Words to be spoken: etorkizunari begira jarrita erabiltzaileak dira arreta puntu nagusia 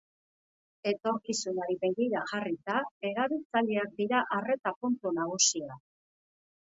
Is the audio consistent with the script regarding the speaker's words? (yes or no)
yes